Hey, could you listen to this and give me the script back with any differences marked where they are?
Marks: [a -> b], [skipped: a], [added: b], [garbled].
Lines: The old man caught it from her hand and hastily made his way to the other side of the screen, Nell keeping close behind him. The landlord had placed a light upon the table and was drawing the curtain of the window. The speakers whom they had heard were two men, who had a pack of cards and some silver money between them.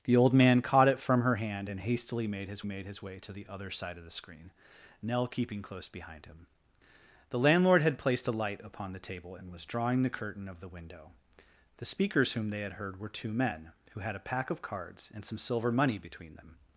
The old man caught it from her hand and hastily made his [added: made his] way to the other side of the screen, Nell keeping close behind him. The landlord had placed a light upon the table and was drawing the curtain of the window. The speakers whom they had heard were two men, who had a pack of cards and some silver money between them.